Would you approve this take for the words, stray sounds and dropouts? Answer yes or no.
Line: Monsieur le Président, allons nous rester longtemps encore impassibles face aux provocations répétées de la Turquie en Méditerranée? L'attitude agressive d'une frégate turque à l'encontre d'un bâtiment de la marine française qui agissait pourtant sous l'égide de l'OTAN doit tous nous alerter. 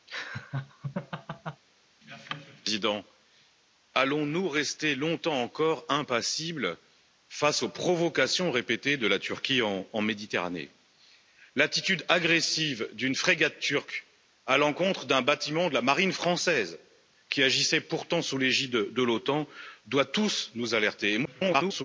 no